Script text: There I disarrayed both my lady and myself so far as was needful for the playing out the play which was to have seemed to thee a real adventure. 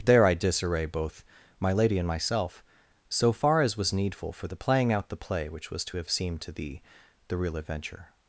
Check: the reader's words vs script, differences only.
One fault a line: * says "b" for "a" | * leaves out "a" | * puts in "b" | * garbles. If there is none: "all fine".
* says "disarray" for "disarrayed"
* says "the" for "a"